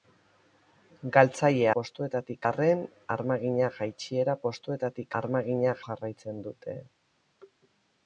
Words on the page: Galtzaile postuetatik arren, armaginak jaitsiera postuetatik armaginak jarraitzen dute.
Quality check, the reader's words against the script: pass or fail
pass